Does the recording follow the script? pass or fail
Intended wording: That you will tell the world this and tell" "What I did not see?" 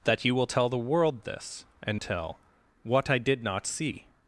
pass